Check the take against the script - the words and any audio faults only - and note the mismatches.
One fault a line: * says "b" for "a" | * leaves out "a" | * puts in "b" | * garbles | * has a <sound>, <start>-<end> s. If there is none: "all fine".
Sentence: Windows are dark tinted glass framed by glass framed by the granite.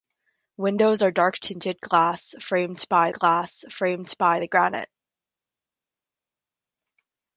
all fine